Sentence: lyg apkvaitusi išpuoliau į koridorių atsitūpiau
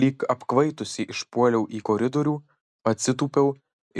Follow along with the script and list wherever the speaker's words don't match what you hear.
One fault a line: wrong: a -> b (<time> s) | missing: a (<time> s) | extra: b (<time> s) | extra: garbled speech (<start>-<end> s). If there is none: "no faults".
no faults